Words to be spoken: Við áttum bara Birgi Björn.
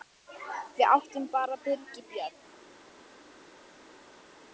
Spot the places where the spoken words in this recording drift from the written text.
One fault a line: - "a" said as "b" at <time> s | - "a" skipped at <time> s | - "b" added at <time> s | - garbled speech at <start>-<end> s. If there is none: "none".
none